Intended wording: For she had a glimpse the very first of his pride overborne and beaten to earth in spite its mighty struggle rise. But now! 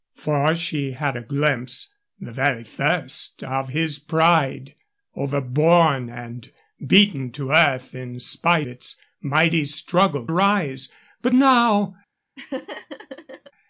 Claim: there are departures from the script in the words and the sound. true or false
true